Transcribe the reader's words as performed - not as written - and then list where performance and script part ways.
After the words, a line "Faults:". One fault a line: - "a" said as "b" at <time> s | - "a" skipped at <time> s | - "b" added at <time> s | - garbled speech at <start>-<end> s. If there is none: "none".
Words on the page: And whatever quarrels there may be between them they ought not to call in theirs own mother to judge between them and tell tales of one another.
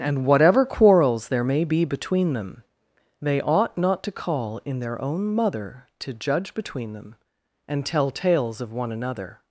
And whatever quarrels there may be between them they ought not to call in their own mother to judge between them and tell tales of one another.
Faults:
- "theirs" said as "their" at 4.8 s